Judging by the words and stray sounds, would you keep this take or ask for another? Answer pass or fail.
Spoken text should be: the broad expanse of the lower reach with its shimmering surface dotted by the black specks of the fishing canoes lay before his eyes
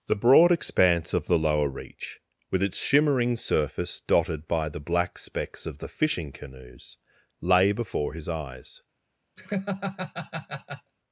fail